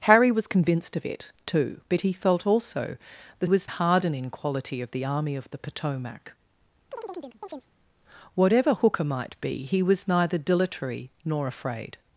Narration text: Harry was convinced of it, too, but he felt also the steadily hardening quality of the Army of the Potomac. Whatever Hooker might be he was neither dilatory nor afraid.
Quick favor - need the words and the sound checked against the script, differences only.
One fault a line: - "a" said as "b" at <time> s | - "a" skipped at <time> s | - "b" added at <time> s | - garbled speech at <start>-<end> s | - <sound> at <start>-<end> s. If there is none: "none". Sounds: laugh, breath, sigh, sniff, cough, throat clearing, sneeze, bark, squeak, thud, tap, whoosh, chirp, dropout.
- "steadily" said as "was" at 3.4 s
- chirp at 6.9-7.7 s